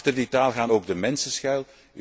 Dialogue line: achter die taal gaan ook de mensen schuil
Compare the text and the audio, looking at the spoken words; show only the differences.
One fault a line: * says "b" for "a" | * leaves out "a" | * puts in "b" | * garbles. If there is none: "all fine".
all fine